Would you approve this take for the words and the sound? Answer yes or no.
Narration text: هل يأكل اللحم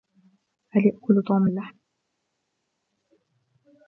no